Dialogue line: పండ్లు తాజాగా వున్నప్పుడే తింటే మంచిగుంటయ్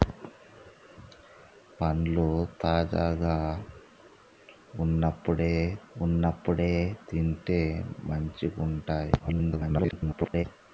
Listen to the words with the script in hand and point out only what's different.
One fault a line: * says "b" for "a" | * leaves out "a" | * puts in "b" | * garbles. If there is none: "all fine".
* puts in "వున్నప్పుడే"
* garbles